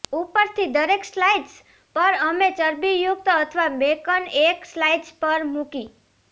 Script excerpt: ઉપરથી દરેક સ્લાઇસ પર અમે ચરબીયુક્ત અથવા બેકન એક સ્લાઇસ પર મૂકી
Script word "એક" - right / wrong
right